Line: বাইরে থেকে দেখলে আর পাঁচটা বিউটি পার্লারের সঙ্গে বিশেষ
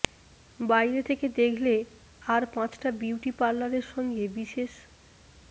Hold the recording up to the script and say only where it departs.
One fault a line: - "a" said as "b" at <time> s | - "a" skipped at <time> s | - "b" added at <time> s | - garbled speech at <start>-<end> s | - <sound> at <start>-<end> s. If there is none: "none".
none